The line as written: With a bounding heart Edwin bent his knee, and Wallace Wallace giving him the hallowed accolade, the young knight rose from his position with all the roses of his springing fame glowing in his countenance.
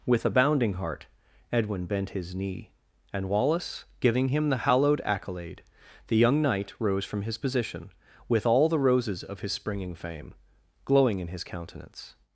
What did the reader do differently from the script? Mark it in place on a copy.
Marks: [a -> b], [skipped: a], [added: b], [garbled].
With a bounding heart Edwin bent his knee, and Wallace [skipped: Wallace] giving him the hallowed accolade, the young knight rose from his position with all the roses of his springing fame glowing in his countenance.